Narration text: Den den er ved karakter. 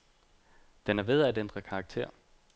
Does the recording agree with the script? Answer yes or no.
no